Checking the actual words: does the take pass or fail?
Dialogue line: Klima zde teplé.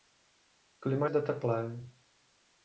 pass